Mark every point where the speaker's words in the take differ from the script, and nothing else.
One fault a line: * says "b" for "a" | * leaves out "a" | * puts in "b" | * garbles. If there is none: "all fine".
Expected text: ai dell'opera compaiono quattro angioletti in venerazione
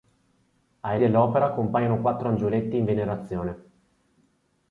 all fine